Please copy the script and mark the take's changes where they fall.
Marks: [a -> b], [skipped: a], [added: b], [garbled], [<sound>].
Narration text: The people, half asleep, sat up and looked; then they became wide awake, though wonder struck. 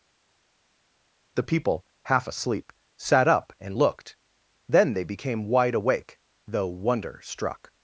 The people, half asleep, sat up and looked; then they became wide awake, though wonder struck.